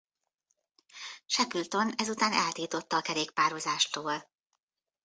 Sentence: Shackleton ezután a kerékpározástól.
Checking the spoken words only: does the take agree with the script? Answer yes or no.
no